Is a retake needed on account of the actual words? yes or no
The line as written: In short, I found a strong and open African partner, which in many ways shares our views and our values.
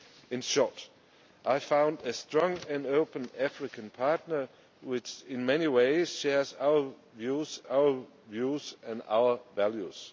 yes